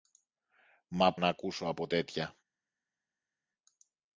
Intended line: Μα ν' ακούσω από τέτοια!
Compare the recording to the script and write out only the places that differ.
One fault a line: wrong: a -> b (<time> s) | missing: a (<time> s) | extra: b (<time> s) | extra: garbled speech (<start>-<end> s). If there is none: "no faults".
no faults